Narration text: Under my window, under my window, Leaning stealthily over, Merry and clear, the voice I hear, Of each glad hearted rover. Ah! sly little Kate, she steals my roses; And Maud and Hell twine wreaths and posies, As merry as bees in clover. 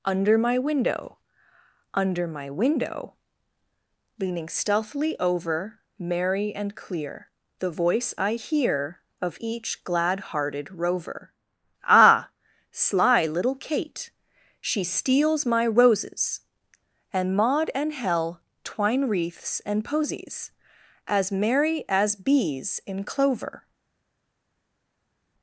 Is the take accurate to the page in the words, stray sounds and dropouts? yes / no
yes